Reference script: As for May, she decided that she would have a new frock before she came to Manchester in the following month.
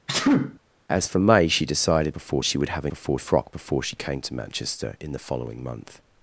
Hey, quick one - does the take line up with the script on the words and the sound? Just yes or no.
no